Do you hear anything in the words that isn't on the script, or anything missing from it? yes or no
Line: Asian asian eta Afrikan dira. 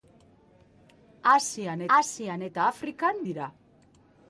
no